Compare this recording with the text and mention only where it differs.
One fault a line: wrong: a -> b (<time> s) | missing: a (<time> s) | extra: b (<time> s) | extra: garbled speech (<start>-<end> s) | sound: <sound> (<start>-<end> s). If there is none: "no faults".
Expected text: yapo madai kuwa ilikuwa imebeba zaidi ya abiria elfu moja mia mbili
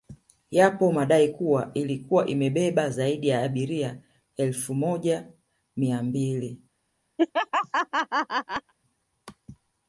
sound: laugh (7.2-8.7 s)